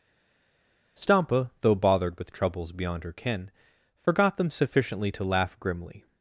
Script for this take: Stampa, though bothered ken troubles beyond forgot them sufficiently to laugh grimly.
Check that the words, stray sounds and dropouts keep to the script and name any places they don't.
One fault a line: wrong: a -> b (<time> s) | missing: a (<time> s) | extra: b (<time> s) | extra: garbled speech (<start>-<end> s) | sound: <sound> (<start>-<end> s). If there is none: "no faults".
wrong: ken -> with (2.2 s)
extra: her ken (3.0 s)